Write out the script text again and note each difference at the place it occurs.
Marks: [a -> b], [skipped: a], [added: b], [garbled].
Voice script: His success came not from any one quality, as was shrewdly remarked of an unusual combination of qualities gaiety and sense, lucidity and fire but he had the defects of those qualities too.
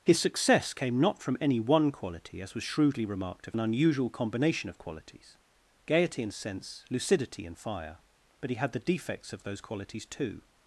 His success came not from any one quality, as was shrewdly remarked of an unusual combination of qualities gaiety and sense, lucidity and fire but he had the defects of those qualities too.